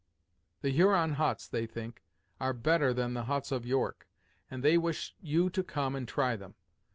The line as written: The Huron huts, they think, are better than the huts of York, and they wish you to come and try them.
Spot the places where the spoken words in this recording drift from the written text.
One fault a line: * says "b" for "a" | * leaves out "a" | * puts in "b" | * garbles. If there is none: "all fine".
all fine